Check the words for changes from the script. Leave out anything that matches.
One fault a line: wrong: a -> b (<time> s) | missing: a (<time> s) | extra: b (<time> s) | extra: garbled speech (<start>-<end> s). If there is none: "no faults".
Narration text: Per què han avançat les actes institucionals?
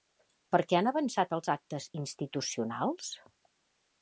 wrong: les -> els (1.4 s)